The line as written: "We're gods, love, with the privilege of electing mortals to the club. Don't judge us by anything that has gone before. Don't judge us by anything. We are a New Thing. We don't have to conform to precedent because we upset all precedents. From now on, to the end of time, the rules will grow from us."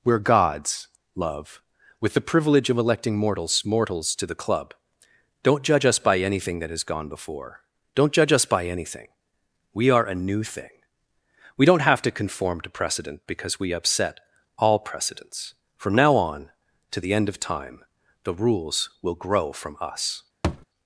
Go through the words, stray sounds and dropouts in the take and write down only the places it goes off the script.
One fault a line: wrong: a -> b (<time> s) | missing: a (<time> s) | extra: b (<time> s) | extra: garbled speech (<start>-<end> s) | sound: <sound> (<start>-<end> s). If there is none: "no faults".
extra: mortals (3.6 s)
sound: thud (20.4-20.7 s)